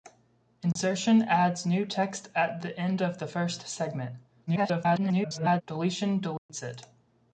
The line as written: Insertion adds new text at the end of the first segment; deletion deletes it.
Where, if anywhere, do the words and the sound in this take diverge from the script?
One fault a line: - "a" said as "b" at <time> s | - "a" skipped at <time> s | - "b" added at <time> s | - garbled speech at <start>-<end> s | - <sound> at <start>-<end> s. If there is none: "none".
- dropout at 0.7-0.8 s
- garbled speech at 4.5-5.6 s
- dropout at 6.4-6.5 s